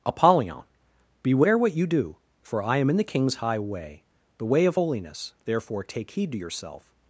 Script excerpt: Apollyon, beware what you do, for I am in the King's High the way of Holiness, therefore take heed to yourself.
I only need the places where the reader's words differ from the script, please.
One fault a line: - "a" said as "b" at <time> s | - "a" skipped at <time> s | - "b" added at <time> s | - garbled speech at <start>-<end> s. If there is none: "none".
- "way" added at 3.6 s